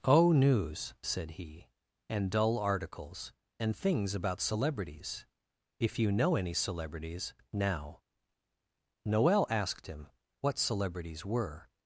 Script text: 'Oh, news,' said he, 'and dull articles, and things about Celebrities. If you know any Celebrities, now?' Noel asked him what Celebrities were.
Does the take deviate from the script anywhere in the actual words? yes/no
no